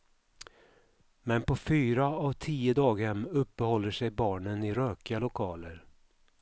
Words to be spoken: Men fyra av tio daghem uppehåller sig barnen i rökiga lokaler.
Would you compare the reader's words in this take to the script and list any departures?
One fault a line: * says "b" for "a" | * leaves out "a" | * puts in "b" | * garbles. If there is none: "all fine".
* puts in "på"